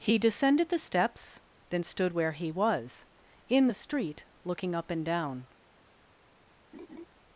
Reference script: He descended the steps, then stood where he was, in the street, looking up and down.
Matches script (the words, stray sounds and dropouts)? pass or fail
fail